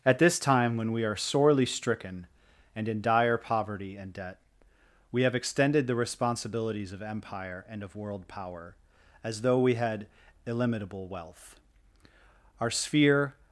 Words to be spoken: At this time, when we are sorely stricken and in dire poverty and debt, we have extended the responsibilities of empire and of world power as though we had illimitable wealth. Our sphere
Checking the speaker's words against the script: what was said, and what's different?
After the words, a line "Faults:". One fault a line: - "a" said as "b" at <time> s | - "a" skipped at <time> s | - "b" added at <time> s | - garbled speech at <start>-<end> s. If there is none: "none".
At this time, when we are sorely stricken and in dire poverty and debt, we have extended the responsibilities of empire and of world power as though we had illimitable wealth. Our sphere
Faults:
none